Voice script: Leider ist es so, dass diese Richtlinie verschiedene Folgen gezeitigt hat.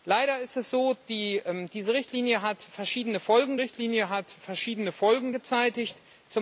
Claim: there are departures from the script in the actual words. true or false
true